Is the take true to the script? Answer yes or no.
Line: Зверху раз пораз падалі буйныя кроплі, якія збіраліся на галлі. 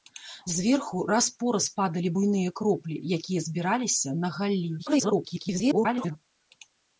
no